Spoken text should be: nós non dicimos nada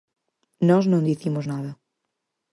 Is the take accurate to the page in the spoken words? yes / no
yes